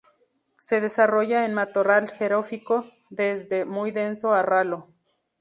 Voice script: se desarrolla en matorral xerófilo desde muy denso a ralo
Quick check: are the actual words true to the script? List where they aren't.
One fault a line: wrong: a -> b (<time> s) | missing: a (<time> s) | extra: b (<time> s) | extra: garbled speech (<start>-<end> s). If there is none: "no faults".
no faults